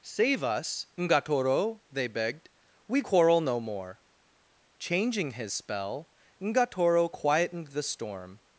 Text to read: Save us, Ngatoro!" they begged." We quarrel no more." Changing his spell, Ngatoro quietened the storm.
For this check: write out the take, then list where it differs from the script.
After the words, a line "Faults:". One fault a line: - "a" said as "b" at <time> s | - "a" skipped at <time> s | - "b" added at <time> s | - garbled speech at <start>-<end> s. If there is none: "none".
Save us, Ngatoro!" they begged." We quarrel no more." Changing his spell, Ngatoro quietened the storm.
Faults:
none